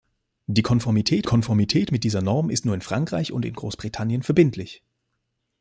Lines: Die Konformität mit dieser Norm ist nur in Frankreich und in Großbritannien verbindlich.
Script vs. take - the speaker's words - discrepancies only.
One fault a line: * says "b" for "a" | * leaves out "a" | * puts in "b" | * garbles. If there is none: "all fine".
* puts in "Konformität"